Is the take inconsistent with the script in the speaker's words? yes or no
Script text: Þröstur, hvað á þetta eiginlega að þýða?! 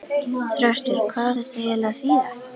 no